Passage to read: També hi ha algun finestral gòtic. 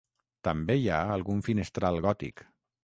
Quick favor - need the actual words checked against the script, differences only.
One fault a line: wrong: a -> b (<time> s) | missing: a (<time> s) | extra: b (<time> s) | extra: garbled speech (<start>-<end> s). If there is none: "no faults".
no faults